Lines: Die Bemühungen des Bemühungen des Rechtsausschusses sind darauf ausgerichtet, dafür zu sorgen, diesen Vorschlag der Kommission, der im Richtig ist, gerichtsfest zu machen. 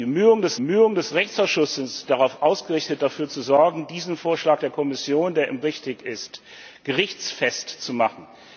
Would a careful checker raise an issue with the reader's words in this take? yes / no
no